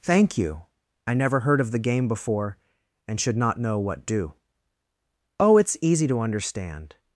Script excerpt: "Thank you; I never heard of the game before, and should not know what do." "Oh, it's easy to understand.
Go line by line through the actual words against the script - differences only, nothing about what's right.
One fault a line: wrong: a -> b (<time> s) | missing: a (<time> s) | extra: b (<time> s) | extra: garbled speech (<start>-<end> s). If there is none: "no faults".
no faults